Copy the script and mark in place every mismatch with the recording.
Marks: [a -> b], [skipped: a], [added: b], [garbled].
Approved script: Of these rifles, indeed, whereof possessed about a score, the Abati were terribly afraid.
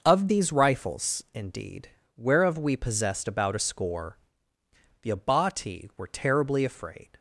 Of these rifles, indeed, whereof [added: we] possessed about a score, the Abati were terribly afraid.